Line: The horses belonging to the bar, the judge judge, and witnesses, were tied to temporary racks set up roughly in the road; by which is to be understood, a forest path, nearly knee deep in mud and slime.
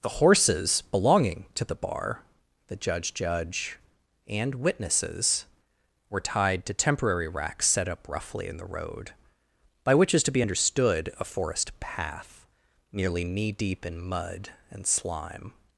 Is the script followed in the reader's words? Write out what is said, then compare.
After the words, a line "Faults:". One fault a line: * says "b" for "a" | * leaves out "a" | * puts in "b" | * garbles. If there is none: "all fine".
The horses belonging to the bar, the judge judge, and witnesses, were tied to temporary racks set up roughly in the road; by which is to be understood, a forest path, nearly knee deep in mud and slime.
Faults:
all fine